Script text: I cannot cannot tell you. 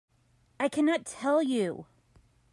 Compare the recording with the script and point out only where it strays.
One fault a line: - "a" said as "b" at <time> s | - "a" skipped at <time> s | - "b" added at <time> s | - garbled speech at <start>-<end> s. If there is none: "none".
- "cannot" skipped at 1.1 s